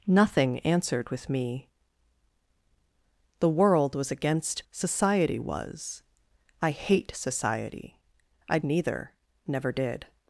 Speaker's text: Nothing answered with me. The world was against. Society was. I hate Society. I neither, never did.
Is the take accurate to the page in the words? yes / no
yes